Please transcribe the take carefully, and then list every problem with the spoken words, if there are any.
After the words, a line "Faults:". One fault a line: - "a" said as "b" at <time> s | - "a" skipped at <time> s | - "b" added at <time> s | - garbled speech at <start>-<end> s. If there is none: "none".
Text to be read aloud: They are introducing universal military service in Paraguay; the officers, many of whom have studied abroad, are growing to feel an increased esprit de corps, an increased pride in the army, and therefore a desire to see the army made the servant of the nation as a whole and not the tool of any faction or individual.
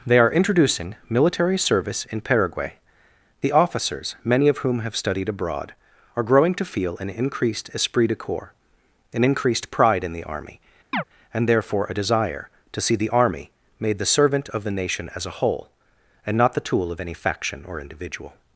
They are introducing military service in Paraguay; the officers, many of whom have studied abroad, are growing to feel an increased esprit de corps, an increased pride in the army, and therefore a desire to see the army made the servant of the nation as a whole and not the tool of any faction or individual.
Faults:
- "universal" skipped at 0.9 s